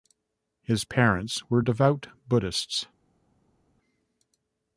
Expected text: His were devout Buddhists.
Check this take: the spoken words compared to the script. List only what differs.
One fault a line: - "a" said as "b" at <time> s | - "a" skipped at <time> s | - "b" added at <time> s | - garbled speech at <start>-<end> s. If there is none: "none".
- "parents" added at 0.8 s